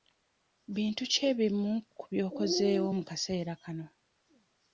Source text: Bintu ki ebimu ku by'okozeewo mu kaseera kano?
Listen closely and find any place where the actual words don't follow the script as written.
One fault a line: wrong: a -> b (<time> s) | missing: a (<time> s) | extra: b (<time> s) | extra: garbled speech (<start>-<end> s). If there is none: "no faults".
no faults